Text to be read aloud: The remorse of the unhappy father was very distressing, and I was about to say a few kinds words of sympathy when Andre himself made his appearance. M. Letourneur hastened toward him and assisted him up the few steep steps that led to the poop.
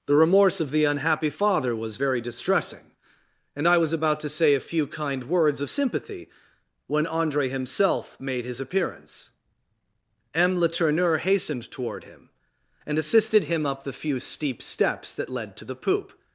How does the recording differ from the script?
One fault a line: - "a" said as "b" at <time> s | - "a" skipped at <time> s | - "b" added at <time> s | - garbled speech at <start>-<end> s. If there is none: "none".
- "kinds" said as "kind" at 4.9 s